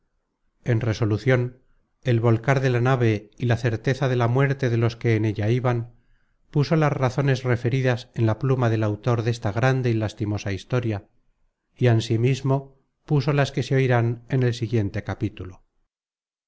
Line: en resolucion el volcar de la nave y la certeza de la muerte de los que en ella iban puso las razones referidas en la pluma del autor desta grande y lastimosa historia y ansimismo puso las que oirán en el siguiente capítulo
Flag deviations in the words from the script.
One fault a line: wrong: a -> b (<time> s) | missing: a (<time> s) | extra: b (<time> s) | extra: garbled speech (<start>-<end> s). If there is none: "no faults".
extra: se (13.6 s)